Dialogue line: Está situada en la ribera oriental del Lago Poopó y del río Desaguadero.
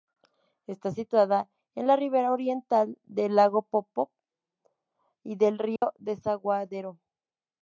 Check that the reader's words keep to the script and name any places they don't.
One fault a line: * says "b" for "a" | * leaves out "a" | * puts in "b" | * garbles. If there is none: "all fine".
all fine